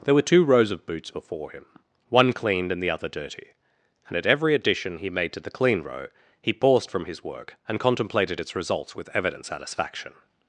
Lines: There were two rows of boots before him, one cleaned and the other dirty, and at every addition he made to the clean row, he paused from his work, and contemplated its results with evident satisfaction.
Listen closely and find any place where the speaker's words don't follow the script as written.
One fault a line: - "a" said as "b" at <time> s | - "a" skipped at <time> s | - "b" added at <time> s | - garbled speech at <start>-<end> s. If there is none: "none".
none